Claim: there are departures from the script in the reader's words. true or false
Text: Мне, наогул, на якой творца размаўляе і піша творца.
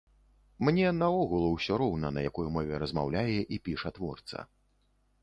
true